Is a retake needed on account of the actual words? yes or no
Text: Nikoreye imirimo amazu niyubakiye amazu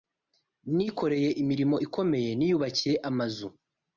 yes